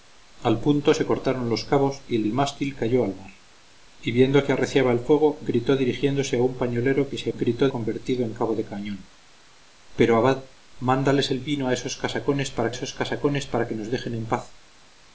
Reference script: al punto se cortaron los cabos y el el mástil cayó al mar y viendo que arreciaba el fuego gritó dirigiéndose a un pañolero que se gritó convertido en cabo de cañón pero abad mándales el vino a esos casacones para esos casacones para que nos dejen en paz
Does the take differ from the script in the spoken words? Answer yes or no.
no